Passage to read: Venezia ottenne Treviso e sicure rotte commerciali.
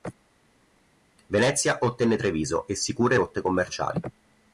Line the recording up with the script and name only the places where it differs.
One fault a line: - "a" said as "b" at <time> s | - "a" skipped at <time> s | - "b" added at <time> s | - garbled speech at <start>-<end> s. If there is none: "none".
none